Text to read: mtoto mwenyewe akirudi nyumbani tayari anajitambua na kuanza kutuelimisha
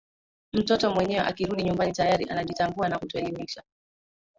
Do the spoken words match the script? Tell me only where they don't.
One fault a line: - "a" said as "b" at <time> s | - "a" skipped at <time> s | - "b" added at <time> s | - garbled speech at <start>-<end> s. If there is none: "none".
- "kuanza" skipped at 3.0 s